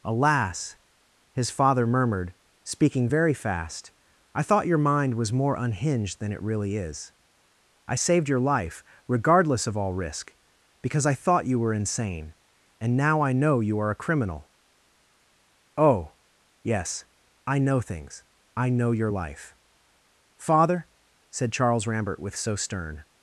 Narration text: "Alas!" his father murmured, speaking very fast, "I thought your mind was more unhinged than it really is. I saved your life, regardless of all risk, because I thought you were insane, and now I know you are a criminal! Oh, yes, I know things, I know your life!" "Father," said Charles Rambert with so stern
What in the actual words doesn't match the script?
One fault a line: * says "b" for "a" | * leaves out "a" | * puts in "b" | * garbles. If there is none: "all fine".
all fine